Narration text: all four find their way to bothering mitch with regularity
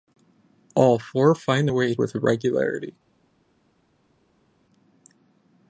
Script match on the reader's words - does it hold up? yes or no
no